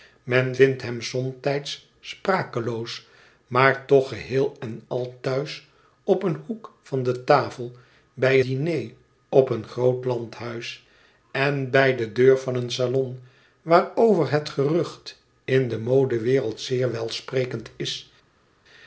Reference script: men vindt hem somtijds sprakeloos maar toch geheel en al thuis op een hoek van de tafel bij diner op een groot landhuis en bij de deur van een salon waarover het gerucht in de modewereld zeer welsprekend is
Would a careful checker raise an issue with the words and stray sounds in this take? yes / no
no